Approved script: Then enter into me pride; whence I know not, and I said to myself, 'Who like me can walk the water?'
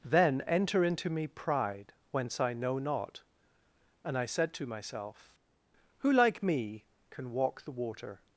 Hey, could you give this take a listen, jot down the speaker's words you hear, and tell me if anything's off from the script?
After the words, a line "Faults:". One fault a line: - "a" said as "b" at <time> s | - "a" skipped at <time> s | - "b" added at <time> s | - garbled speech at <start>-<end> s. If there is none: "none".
Then enter into me pride; whence I know not, and I said to myself, 'Who like me can walk the water?'
Faults:
none